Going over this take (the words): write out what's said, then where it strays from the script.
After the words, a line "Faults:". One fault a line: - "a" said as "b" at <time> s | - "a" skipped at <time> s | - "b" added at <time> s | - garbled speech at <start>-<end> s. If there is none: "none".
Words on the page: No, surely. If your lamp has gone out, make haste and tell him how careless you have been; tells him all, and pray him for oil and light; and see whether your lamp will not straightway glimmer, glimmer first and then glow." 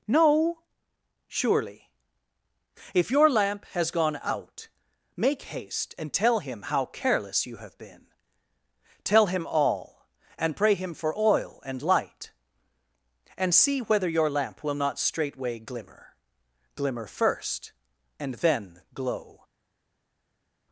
No, surely. If your lamp has gone out, make haste and tell him how careless you have been; tell him all, and pray him for oil and light; and see whether your lamp will not straightway glimmer, glimmer first and then glow."
Faults:
- "tells" said as "tell" at 9.0 s